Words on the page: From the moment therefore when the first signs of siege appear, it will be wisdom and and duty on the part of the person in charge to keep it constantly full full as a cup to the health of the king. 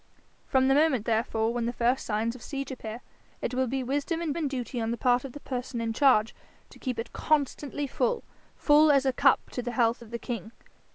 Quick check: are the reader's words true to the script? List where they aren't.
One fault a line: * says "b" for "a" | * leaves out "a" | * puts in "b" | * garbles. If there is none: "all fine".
all fine